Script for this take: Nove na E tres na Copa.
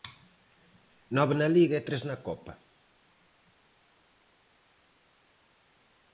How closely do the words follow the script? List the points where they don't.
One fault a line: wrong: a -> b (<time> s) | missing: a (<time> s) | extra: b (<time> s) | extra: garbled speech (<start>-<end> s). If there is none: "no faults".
extra: Liga (1.6 s)